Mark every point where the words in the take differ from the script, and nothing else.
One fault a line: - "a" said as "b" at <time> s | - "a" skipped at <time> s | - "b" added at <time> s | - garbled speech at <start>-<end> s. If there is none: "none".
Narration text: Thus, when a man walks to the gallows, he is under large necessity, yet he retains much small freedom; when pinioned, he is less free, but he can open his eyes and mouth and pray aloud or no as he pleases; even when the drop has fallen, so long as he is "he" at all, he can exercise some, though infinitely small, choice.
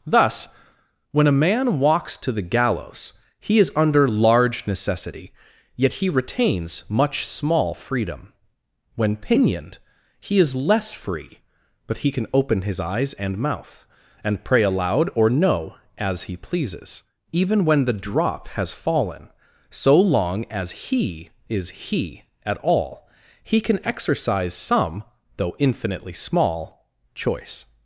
none